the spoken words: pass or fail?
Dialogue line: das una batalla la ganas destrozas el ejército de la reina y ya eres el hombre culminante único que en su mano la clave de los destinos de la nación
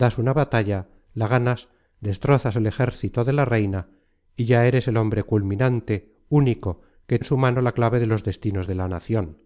pass